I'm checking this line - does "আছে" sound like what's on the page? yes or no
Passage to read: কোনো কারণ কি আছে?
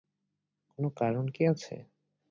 yes